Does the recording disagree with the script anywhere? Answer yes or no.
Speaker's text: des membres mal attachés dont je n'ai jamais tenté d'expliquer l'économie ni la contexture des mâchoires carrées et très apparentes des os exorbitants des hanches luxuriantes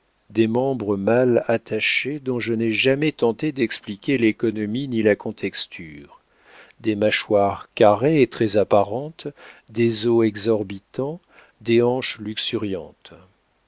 no